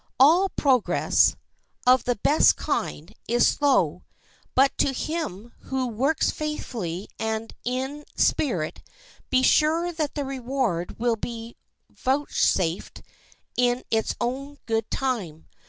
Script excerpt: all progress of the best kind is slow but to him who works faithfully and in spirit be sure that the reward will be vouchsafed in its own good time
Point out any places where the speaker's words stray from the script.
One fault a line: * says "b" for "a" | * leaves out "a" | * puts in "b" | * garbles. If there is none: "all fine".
all fine